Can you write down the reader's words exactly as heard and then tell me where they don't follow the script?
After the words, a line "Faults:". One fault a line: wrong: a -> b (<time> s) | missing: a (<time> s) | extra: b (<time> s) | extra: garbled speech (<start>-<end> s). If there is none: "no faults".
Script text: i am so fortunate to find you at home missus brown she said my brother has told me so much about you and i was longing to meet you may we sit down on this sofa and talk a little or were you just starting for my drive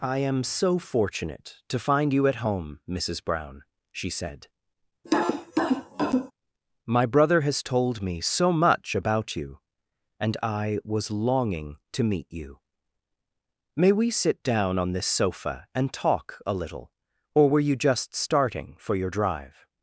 i am so fortunate to find you at home missus brown she said my brother has told me so much about you and i was longing to meet you may we sit down on this sofa and talk a little or were you just starting for your drive
Faults:
wrong: my -> your (18.9 s)